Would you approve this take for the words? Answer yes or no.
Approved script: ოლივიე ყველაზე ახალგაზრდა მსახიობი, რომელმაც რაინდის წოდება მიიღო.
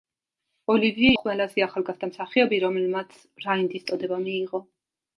yes